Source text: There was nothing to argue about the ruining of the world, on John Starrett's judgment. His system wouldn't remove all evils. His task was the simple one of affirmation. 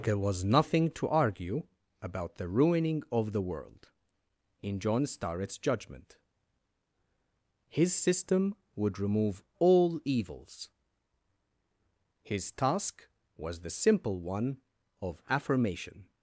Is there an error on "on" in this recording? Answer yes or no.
yes